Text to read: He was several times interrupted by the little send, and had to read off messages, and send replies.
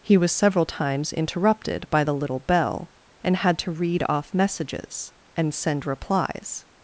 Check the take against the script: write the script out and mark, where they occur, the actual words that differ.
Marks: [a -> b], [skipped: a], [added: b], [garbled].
He was several times interrupted by the little [send, -> bell] and had to read off messages, and send replies.